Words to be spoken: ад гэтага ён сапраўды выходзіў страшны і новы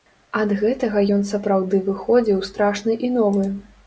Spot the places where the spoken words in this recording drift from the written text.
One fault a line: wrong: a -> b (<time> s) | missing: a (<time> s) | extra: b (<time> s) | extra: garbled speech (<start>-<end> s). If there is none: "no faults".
no faults